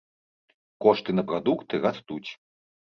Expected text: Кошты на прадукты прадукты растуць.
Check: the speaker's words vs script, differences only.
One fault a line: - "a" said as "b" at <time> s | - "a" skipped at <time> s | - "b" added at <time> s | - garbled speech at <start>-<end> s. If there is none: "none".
- "прадукты" skipped at 1.7 s